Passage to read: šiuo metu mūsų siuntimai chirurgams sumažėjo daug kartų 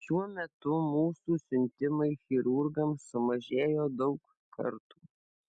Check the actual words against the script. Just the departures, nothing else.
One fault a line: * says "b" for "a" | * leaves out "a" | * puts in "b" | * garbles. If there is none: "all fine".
all fine